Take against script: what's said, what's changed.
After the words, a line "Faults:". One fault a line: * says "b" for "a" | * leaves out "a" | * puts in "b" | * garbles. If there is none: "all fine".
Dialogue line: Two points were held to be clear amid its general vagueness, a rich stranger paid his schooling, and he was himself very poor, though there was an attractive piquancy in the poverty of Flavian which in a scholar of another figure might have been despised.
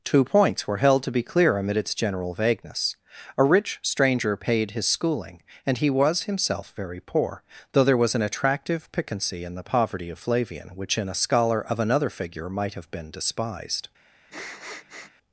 Two points were held to be clear amid its general vagueness, a rich stranger paid his schooling, and he was himself very poor, though there was an attractive piquancy in the poverty of Flavian which in a scholar of another figure might have been despised.
Faults:
all fine